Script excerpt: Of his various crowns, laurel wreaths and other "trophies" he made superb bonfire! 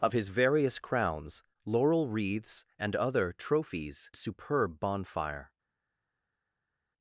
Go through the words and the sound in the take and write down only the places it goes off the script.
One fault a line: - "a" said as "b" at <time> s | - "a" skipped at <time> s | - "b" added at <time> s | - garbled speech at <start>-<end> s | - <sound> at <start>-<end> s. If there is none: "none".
- "he made" skipped at 4.1 s